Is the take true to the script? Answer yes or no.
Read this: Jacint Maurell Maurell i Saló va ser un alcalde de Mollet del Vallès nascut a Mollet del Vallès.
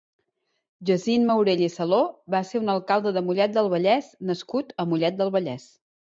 no